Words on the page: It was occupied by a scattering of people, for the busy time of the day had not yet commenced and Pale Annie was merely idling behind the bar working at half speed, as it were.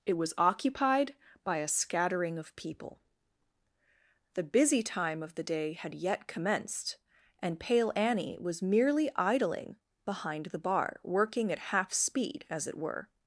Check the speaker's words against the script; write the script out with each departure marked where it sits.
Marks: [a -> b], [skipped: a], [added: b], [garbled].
It was occupied by a scattering of people, [skipped: for] the busy time of the day had [skipped: not] yet commenced and Pale Annie was merely idling behind the bar working at half speed, as it were.